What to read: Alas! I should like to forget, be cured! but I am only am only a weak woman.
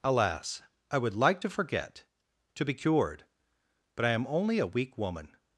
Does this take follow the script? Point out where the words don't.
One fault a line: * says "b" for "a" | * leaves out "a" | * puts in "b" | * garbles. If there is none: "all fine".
* says "would" for "should"
* puts in "to"
* leaves out "am only"